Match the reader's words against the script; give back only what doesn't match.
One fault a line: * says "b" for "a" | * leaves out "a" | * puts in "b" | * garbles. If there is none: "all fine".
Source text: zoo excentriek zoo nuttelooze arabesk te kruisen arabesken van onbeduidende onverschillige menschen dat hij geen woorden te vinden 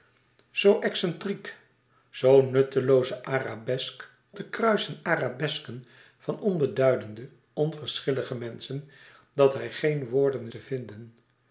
all fine